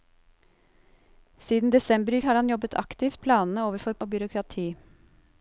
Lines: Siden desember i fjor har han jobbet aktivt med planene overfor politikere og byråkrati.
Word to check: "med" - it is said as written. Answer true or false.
false